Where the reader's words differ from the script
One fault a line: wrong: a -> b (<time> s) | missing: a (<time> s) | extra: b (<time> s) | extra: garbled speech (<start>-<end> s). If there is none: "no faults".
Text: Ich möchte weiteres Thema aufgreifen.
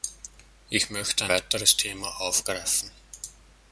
no faults